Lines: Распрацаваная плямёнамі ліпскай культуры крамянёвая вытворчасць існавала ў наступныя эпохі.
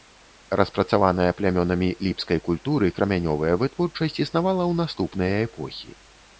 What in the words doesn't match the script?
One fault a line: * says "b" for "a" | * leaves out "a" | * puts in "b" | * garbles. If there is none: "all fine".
all fine